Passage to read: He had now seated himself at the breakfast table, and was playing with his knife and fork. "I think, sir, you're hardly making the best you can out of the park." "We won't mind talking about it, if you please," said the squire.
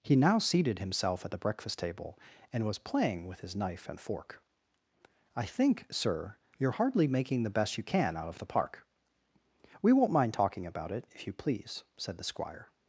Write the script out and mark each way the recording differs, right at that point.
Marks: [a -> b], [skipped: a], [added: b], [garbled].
He [skipped: had] now seated himself at the breakfast table, and was playing with his knife and fork. "I think, sir, you're hardly making the best you can out of the park." "We won't mind talking about it, if you please," said the squire.